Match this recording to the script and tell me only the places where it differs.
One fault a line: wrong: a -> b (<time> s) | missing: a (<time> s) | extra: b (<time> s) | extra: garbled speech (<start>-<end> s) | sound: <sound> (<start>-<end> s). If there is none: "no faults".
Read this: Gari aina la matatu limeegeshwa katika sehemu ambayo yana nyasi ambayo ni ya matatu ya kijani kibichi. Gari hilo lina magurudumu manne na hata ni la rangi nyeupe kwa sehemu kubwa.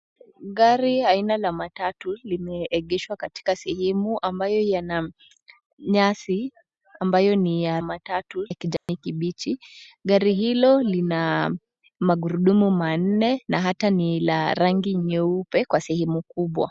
sound: dropout (8.8-8.9 s)